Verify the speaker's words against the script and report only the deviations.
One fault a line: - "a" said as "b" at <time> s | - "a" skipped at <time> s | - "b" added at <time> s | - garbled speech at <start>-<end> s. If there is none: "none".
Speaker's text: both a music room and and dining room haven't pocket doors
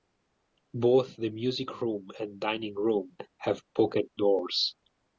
- "a" said as "the" at 1.2 s
- "and" skipped at 2.4 s
- "haven't" said as "have" at 3.4 s